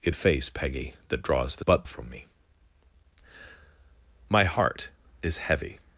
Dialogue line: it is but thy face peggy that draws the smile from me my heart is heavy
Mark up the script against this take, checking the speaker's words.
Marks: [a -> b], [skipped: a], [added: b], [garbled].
it [skipped: is but thy] face peggy that draws the [smile -> but] from me my heart is heavy